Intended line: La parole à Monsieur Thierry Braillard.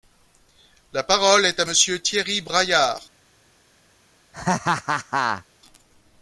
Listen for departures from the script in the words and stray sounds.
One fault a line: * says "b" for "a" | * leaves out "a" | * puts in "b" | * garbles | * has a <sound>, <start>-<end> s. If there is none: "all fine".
* puts in "est"
* has a laugh, 4.3-5.5 s